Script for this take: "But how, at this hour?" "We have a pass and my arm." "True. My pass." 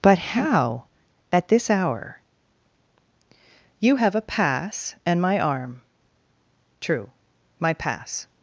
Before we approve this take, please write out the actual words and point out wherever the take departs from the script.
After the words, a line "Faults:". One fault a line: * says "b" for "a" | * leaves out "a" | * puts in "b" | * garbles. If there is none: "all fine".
"But how, at this hour?" "You have a pass and my arm." "True. My pass."
Faults:
* says "You" for "We"